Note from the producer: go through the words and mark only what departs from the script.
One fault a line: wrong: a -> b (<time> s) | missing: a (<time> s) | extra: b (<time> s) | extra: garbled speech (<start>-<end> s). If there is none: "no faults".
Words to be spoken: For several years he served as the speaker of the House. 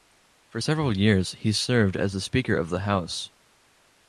no faults